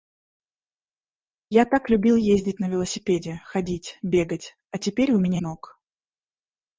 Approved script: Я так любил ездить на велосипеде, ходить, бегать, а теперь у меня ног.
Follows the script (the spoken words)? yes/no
yes